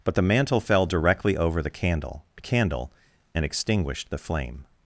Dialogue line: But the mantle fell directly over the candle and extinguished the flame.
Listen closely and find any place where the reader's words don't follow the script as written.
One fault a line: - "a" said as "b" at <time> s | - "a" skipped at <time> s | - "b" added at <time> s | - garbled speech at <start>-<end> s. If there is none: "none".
- "candle" added at 2.4 s